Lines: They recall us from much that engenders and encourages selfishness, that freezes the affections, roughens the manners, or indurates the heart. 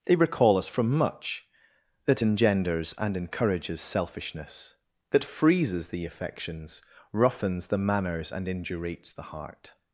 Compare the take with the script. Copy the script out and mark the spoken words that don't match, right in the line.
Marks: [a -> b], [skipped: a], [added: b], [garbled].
They recall us from much that engenders and encourages selfishness, that freezes the affections, roughens the manners, [or -> and] indurates the heart.